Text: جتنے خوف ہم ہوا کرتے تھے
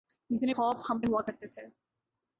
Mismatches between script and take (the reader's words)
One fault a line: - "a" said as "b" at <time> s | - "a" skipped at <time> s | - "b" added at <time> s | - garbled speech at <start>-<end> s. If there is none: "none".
none